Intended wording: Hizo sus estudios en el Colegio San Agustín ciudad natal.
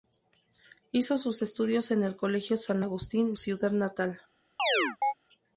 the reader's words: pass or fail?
pass